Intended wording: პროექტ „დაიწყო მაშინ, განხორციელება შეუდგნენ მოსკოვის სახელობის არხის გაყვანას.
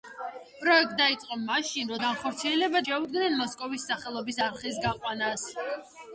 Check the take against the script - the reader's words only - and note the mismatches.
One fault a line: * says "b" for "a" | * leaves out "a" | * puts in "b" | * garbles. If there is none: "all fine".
all fine